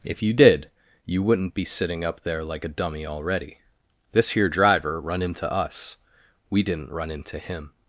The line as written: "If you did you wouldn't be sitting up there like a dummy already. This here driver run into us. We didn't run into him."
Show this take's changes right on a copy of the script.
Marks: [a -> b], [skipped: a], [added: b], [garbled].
"If you did you wouldn't be sitting up there like a dummy already. This here driver run into us. We didn't run into him."